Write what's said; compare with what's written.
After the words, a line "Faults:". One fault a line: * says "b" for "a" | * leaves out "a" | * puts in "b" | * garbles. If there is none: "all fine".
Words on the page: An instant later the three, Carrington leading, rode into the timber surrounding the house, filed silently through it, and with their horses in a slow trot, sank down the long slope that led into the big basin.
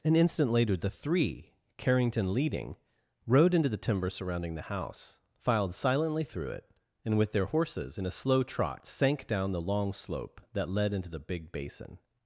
An instant later the three, Carrington leading, rode into the timber surrounding the house, filed silently through it, and with their horses in a slow trot, sank down the long slope that led into the big basin.
Faults:
all fine